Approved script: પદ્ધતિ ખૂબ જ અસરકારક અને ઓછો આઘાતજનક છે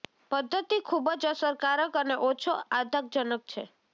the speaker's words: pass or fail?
pass